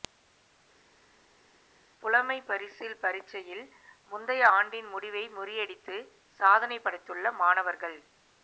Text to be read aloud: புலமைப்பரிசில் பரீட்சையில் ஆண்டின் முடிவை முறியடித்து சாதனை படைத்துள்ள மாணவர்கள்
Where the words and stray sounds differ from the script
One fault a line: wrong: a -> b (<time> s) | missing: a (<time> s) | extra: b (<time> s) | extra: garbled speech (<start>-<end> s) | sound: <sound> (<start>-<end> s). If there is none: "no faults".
extra: முந்தைய (4.1 s)